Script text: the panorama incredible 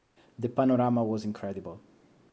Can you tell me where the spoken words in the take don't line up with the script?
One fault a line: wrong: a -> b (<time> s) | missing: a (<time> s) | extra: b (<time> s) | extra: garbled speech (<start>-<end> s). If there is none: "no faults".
extra: was (1.0 s)